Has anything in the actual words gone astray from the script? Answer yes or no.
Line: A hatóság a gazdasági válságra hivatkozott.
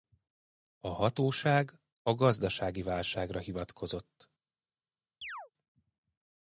no